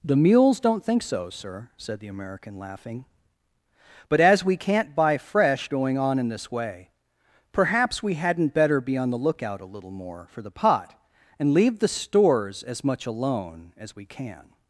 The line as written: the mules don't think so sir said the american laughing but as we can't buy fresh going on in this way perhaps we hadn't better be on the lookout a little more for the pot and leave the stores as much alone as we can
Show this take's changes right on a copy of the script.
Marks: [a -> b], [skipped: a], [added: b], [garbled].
the mules don't think so sir said the american laughing but as we can't buy fresh going on in this way perhaps we hadn't better be on the lookout a little more for the pot and leave the stores as much alone as we can